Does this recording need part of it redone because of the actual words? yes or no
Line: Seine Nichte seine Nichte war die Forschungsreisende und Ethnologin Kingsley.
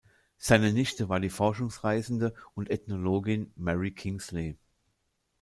yes